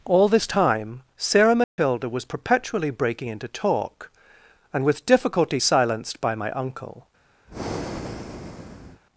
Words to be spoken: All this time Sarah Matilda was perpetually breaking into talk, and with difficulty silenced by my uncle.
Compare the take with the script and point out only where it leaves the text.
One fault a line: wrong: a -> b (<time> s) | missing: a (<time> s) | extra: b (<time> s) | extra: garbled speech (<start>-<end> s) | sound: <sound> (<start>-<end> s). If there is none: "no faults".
sound: dropout (1.6-1.8 s)
sound: breath (7.5-9.0 s)